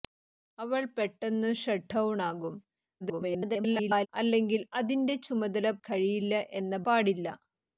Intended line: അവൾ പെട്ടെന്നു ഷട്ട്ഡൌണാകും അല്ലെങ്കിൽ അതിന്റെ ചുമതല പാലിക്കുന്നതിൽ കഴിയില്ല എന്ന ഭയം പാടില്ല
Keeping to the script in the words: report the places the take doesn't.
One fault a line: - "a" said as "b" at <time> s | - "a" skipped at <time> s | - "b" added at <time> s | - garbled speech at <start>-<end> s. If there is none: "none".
- garbled speech at 3.0-4.1 s
- "പാലിക്കുന്നതിൽ" skipped at 5.7 s
- "ഭയം" skipped at 6.8 s